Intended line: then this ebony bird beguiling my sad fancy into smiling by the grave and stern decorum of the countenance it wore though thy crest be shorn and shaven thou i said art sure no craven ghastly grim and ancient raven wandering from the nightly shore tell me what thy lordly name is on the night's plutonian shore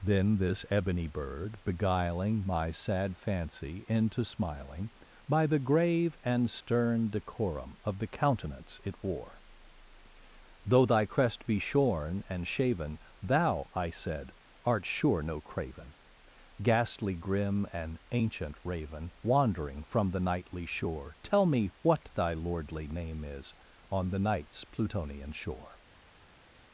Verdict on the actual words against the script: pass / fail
pass